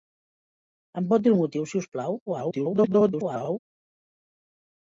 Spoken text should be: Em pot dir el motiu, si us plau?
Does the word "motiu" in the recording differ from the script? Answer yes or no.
no